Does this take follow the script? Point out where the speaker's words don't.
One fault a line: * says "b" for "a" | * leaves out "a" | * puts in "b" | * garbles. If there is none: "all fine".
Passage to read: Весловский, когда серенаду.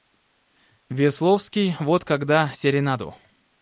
* puts in "вот"